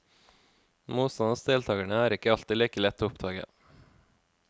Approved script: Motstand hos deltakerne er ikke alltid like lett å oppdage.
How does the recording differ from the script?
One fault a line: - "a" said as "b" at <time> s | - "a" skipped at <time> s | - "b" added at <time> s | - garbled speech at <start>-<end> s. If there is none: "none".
none